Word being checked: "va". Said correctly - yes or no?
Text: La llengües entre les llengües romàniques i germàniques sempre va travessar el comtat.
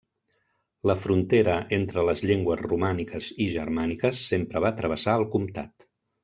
yes